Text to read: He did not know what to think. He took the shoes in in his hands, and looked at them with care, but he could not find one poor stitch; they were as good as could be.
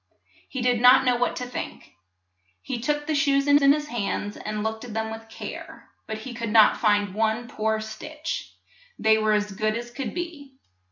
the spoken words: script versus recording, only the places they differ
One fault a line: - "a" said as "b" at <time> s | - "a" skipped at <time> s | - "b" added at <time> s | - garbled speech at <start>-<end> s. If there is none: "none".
none